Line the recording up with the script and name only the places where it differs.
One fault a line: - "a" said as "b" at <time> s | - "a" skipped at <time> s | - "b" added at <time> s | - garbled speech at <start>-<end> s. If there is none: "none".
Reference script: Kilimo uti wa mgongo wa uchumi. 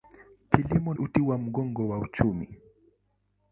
none